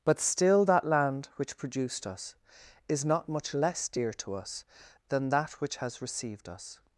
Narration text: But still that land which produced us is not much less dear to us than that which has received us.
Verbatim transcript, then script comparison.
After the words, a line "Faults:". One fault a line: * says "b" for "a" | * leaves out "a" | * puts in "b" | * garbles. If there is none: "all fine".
But still that land which produced us is not much less dear to us than that which has received us.
Faults:
all fine